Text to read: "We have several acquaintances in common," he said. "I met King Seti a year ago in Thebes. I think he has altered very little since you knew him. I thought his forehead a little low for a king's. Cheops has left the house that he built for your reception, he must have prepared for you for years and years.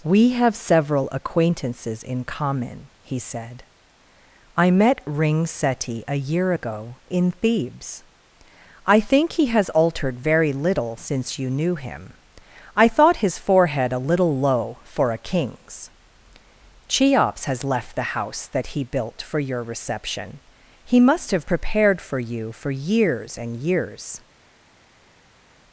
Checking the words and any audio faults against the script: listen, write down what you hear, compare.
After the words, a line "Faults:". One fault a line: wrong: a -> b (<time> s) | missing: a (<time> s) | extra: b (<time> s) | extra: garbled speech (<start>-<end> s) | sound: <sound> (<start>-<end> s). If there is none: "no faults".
"We have several acquaintances in common," he said. "I met Ring Seti a year ago in Thebes. I think he has altered very little since you knew him. I thought his forehead a little low for a king's. Cheops has left the house that he built for your reception, he must have prepared for you for years and years.
Faults:
wrong: King -> Ring (5.0 s)